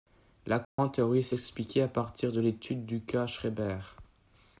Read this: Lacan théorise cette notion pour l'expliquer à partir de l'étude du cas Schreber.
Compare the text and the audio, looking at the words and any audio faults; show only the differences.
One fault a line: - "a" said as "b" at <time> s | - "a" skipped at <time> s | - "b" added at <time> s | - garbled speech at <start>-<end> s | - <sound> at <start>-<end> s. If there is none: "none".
- dropout at 0.6-0.8 s
- "cette notion pour" skipped at 1.3 s